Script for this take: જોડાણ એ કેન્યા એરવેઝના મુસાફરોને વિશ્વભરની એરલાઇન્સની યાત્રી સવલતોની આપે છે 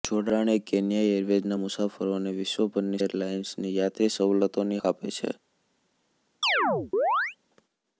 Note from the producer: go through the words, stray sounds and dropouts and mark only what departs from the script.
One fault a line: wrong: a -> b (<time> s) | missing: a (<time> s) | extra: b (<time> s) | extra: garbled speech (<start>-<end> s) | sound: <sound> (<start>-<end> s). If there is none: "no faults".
sound: chirp (6.4-7.4 s)